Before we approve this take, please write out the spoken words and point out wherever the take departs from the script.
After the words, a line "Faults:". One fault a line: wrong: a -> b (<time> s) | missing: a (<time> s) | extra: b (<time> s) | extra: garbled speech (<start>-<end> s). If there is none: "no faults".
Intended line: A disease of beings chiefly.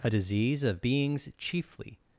A disease of beings chiefly.
Faults:
no faults